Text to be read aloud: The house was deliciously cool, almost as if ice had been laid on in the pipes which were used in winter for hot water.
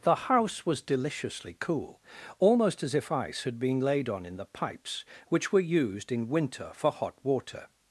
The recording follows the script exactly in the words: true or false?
true